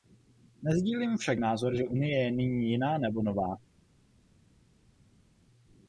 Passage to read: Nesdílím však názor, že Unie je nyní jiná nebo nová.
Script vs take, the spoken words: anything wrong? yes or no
no